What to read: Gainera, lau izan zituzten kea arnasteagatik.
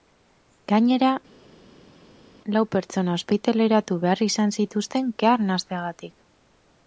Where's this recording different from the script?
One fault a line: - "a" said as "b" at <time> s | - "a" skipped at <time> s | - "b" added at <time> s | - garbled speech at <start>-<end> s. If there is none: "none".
- "pertsona ospitaleratu behar" added at 2.7 s